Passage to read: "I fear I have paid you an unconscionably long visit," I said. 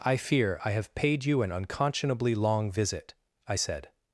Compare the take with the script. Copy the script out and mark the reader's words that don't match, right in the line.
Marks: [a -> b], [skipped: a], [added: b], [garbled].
"I fear I have paid you an unconscionably long visit," I said.